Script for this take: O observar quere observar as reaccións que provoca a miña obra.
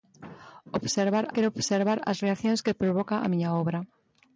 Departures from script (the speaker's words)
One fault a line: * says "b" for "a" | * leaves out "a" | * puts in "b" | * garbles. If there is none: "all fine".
all fine